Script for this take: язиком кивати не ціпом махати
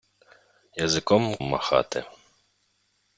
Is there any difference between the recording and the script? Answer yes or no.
yes